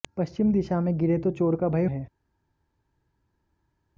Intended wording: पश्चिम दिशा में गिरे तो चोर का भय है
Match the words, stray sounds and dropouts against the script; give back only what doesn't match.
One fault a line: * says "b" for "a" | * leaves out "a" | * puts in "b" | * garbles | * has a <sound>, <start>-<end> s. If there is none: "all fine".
all fine